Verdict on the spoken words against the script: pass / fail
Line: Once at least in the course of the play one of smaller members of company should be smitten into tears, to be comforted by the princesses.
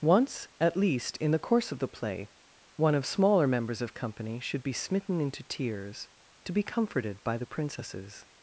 pass